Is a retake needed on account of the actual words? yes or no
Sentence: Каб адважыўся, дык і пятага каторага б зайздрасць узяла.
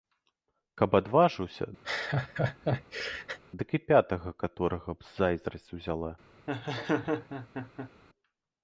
no